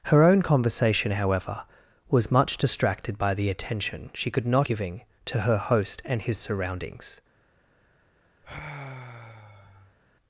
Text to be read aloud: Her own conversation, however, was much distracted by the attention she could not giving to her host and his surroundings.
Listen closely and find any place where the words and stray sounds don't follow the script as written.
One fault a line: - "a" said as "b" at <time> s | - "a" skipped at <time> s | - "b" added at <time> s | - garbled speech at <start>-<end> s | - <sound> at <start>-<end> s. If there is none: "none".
- sigh at 8.4-10.0 s